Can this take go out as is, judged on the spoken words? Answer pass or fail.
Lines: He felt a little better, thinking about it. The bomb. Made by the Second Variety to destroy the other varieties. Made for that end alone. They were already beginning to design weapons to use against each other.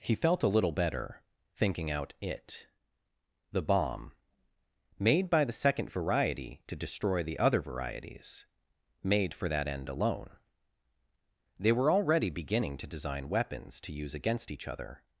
fail